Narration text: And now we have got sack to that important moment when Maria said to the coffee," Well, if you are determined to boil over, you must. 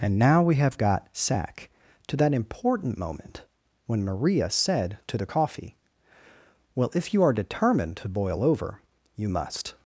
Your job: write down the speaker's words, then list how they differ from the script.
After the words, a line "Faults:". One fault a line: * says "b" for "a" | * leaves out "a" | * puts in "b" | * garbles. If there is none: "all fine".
And now we have got sack to that important moment when Maria said to the coffee," Well, if you are determined to boil over, you must.
Faults:
all fine